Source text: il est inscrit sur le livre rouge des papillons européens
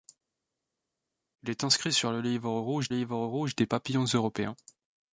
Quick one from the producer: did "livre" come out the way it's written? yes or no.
yes